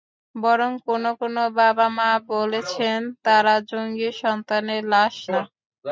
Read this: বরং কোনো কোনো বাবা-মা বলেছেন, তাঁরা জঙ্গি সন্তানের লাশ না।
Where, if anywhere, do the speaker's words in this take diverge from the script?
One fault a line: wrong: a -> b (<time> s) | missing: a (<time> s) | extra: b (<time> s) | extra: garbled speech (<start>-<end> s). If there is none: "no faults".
no faults